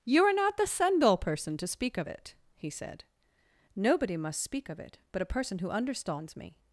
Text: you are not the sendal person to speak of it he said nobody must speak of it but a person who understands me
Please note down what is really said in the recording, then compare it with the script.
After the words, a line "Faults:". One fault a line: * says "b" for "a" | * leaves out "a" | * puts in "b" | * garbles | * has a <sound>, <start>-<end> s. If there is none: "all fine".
you are not the sendal person to speak of it he said nobody must speak of it but a person who understands me
Faults:
all fine